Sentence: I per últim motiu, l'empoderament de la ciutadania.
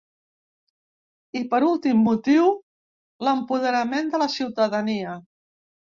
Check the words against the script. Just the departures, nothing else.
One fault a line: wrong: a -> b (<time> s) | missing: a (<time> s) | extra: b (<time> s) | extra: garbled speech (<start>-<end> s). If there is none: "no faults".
no faults